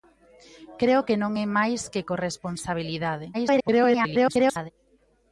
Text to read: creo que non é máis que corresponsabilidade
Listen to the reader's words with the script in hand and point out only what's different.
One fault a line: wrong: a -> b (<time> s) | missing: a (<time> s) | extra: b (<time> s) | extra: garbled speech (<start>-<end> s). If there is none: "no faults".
extra: garbled speech (3.3-4.7 s)